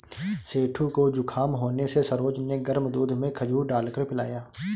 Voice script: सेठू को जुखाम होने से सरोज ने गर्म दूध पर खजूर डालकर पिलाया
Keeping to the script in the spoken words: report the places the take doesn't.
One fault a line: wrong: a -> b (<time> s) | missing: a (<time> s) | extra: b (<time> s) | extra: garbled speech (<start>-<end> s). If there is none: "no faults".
wrong: पर -> में (3.2 s)